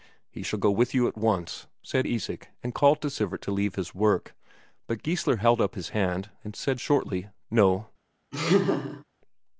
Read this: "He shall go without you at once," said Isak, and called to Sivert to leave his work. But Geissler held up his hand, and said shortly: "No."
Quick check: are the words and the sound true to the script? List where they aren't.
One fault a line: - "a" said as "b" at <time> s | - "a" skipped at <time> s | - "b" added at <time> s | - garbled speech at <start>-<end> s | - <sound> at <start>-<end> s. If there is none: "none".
- "without" said as "with" at 0.7 s
- laugh at 8.3-9.0 s